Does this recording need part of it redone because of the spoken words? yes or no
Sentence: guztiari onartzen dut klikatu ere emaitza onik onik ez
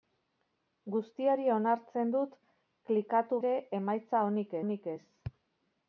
no